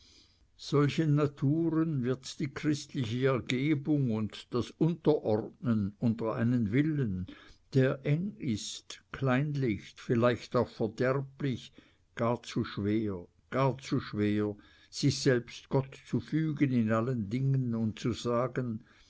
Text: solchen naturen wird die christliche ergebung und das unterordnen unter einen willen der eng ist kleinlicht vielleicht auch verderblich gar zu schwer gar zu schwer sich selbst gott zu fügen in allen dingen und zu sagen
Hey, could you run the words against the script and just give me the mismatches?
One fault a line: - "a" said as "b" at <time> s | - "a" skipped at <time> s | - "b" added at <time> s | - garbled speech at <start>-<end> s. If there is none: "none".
none